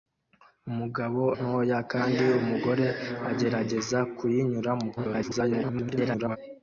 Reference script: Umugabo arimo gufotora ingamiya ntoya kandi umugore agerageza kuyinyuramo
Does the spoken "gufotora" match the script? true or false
false